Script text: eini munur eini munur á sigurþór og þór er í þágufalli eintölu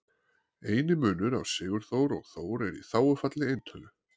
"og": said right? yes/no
yes